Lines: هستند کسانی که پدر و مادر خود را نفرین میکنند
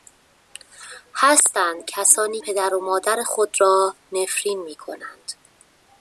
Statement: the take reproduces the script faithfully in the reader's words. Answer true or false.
false